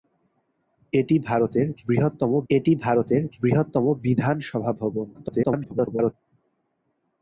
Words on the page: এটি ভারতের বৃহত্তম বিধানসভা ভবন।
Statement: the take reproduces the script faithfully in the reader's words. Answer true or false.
false